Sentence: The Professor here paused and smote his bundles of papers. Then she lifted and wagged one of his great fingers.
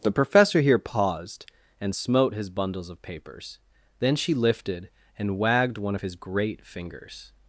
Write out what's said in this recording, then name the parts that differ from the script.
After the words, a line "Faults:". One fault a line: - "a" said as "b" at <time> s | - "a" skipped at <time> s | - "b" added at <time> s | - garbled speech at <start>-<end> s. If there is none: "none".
The Professor here paused and smote his bundles of papers. Then she lifted and wagged one of his great fingers.
Faults:
none